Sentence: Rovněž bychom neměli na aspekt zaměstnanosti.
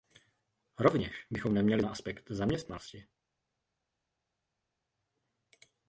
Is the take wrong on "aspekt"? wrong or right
right